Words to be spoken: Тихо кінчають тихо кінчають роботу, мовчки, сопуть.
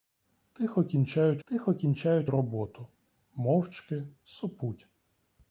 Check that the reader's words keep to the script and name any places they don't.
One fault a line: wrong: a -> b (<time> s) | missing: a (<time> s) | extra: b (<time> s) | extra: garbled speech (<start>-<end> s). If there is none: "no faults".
no faults